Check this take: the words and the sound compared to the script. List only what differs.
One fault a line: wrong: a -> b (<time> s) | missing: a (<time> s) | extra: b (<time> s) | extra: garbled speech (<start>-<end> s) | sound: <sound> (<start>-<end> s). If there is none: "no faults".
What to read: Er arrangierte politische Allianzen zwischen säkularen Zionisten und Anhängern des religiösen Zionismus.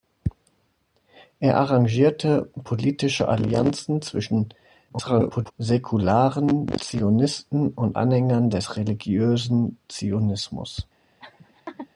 extra: garbled speech (4.9-5.5 s)
sound: laugh (11.2-11.9 s)